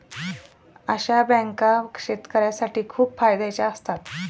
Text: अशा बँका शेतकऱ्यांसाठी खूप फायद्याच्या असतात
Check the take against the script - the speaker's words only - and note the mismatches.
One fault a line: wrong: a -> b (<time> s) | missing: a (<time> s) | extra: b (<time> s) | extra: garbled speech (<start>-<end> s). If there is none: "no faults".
no faults